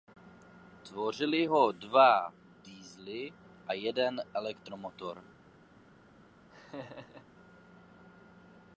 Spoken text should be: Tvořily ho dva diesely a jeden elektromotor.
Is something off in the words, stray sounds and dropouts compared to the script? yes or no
yes